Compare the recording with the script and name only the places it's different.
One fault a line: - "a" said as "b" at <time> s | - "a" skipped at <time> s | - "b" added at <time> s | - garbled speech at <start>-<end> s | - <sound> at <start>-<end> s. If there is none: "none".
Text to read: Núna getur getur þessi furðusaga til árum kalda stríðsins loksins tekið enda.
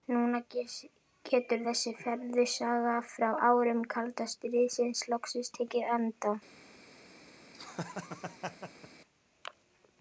- "getur" skipped at 1.6 s
- "til" said as "frá" at 3.2 s
- laugh at 7.5-8.9 s